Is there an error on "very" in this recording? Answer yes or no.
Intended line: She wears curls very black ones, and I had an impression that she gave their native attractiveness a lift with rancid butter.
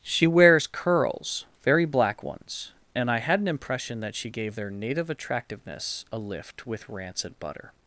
no